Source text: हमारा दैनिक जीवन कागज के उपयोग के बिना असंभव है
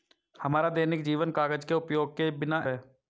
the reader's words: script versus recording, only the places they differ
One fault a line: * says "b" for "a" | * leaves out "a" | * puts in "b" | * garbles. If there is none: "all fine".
* leaves out "असंभव"